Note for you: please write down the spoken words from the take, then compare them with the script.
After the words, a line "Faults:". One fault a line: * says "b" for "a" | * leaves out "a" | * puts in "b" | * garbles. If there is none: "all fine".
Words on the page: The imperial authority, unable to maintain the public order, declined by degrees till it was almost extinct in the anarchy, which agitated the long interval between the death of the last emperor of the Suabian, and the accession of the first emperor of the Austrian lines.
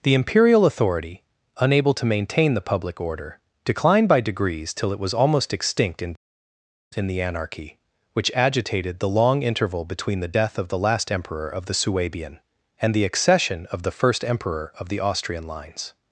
The imperial authority, unable to maintain the public order, declined by degrees till it was almost extinct in in the anarchy, which agitated the long interval between the death of the last emperor of the Suabian, and the accession of the first emperor of the Austrian lines.
Faults:
* puts in "in"